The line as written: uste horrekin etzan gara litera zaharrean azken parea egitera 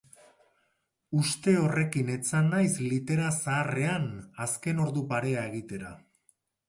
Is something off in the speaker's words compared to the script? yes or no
yes